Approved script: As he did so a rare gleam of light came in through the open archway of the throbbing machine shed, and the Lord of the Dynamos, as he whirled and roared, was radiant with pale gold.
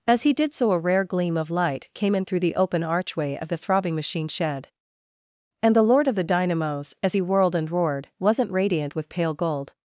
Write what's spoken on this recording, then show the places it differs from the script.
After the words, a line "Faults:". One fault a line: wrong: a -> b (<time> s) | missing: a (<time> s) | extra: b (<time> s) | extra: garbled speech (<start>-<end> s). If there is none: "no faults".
As he did so a rare gleam of light came in through the open archway of the throbbing machine shed, and the Lord of the Dynamos, as he whirled and roared, wasn't radiant with pale gold.
Faults:
wrong: was -> wasn't (8.2 s)